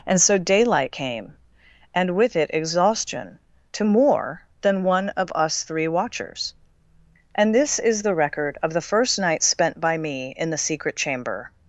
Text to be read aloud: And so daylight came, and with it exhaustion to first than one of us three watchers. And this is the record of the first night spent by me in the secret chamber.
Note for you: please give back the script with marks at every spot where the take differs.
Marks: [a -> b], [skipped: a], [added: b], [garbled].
And so daylight came, and with it exhaustion to [first -> more] than one of us three watchers. And this is the record of the first night spent by me in the secret chamber.